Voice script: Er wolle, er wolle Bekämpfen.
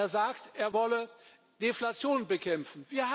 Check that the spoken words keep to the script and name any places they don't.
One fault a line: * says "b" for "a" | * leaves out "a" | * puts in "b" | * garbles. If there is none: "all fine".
* says "sagt" for "wolle"
* puts in "Deflation"